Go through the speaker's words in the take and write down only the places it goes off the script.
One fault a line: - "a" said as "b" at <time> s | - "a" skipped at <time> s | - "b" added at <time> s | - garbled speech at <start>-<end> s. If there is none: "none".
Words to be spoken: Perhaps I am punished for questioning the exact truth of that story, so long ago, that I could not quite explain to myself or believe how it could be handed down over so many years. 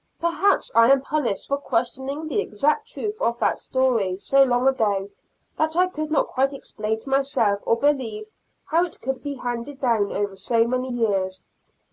none